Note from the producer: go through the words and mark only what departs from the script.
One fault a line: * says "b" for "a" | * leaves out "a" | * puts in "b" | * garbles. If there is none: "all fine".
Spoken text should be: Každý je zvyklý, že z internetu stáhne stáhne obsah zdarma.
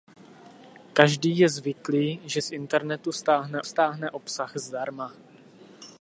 all fine